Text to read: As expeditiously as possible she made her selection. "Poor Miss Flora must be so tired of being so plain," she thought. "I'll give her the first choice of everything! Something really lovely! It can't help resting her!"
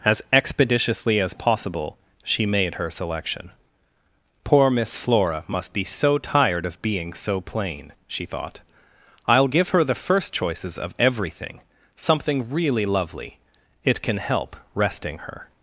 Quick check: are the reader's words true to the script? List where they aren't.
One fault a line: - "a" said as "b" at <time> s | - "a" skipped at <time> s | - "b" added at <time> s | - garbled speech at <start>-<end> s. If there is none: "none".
- "choice" said as "choices" at 10.3 s
- "can't" said as "can" at 14.0 s